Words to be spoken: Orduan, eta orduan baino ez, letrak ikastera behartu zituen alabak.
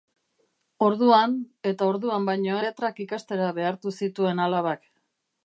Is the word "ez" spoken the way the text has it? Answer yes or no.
no